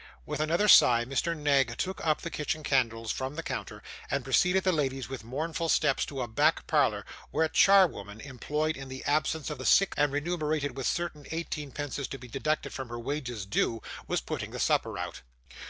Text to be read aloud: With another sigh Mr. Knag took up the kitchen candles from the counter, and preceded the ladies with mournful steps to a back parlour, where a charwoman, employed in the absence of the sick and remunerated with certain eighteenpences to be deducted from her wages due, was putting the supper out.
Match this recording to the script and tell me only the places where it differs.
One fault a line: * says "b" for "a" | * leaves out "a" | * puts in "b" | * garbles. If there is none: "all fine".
all fine